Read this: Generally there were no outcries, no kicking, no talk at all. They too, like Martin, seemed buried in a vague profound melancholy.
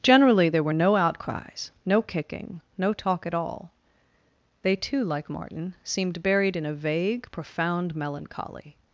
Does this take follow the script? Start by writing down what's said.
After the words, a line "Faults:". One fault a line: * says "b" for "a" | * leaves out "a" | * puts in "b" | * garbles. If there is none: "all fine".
Generally there were no outcries, no kicking, no talk at all. They too, like Martin, seemed buried in a vague profound melancholy.
Faults:
all fine